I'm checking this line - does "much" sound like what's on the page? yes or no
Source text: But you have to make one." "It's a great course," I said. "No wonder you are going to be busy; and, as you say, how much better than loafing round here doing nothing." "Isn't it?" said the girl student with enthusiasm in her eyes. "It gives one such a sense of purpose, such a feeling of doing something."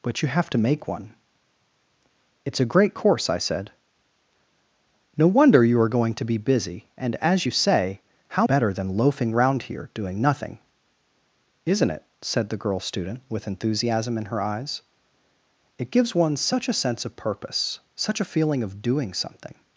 no